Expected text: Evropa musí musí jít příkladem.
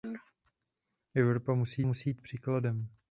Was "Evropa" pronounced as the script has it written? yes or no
yes